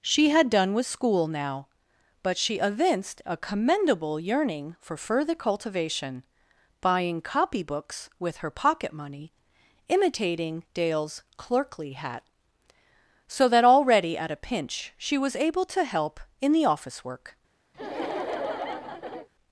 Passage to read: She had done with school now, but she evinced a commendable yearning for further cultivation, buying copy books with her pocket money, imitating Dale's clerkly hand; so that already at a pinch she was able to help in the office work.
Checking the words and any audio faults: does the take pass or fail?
fail